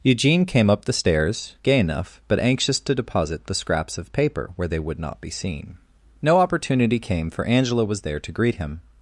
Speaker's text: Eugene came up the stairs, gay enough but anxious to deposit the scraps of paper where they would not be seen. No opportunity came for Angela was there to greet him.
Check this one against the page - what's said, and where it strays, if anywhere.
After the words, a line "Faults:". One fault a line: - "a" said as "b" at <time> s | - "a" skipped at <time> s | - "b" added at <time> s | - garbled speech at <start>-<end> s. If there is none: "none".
Eugene came up the stairs, gay enough but anxious to deposit the scraps of paper where they would not be seen. No opportunity came for Angela was there to greet him.
Faults:
none